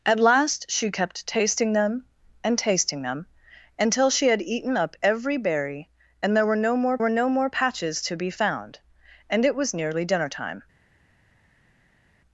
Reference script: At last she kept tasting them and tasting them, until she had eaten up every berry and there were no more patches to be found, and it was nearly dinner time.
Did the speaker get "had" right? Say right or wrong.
right